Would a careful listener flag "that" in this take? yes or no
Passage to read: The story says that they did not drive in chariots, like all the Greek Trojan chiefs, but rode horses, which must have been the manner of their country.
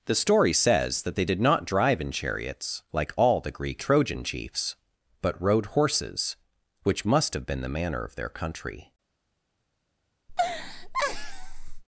no